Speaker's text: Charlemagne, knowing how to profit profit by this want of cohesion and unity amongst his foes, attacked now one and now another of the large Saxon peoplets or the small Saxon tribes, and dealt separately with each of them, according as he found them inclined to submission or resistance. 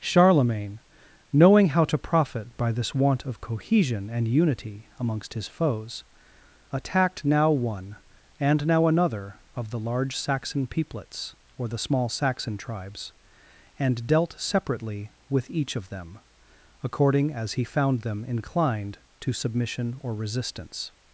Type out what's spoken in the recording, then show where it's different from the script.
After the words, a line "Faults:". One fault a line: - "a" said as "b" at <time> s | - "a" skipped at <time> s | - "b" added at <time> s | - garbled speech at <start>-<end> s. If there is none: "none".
Charlemagne, knowing how to profit by this want of cohesion and unity amongst his foes, attacked now one and now another of the large Saxon peoplets or the small Saxon tribes, and dealt separately with each of them, according as he found them inclined to submission or resistance.
Faults:
- "profit" skipped at 2.6 s